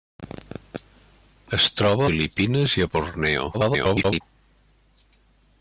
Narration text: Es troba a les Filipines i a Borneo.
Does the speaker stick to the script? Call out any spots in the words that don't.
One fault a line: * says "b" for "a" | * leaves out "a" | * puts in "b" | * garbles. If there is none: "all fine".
* leaves out "a les"
* garbles